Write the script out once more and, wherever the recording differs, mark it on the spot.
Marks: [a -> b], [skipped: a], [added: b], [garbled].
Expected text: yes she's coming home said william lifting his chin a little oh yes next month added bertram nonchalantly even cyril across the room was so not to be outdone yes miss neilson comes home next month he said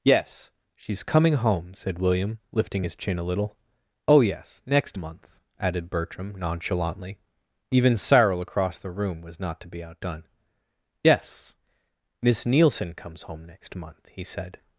yes she's coming home said william lifting his chin a little oh yes next month added bertram nonchalantly even cyril across the room was [skipped: so] not to be outdone yes miss neilson comes home next month he said